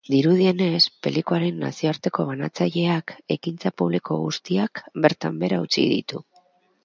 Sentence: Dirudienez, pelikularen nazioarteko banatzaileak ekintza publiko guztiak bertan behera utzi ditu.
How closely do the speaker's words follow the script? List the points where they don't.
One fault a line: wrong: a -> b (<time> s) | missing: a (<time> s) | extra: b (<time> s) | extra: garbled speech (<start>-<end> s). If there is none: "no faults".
no faults